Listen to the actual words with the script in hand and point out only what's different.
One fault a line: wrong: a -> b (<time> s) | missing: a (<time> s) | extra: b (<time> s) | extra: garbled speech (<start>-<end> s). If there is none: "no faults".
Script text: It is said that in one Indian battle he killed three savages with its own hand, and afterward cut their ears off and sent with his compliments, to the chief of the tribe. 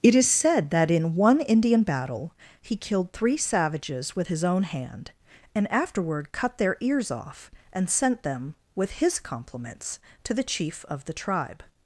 wrong: its -> his (4.3 s)
extra: them (8.2 s)